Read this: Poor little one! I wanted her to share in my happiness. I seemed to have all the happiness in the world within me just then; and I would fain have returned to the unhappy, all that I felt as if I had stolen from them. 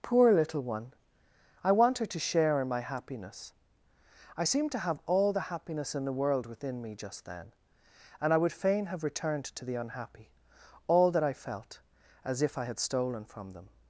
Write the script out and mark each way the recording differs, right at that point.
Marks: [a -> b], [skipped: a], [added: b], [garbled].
Poor little one! I [wanted -> want] her to share in my happiness. I seemed to have all the happiness in the world within me just then; and I would fain have returned to the unhappy, all that I felt as if I had stolen from them.